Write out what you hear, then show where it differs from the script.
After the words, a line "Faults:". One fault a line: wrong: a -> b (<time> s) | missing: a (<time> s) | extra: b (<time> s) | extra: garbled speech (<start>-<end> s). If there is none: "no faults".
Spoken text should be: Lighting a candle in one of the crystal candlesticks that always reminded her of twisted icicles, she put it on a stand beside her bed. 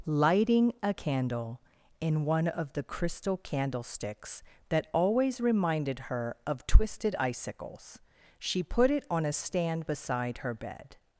Lighting a candle in one of the crystal candlesticks that always reminded her of twisted icicles, she put it on a stand beside her bed.
Faults:
no faults